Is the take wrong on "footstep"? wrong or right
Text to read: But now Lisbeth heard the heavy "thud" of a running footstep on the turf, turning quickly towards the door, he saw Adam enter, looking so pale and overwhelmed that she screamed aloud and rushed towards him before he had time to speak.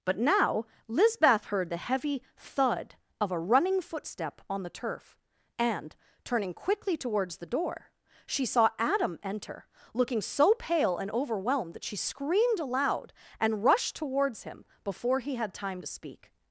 right